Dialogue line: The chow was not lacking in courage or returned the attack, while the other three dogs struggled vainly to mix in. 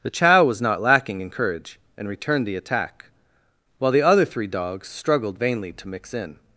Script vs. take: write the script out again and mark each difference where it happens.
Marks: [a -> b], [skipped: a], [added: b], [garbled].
The chow was not lacking in courage [or -> and] returned the attack, while the other three dogs struggled vainly to mix in.